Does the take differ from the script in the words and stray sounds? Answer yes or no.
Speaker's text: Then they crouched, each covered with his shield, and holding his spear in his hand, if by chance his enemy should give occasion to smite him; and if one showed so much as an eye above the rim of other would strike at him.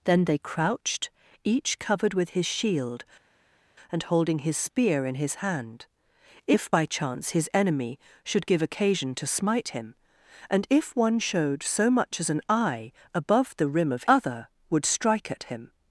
no